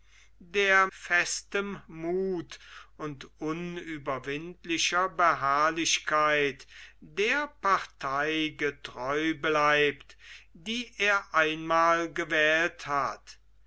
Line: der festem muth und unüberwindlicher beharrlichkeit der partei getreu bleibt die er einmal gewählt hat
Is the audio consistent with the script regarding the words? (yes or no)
yes